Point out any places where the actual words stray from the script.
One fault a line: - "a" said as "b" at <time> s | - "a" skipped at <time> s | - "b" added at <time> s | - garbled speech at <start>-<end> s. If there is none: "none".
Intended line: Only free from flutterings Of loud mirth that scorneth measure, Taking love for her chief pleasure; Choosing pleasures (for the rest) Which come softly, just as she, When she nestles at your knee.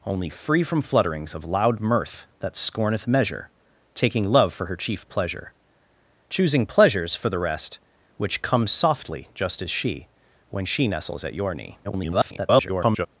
- garbled speech at 11.8-13.1 s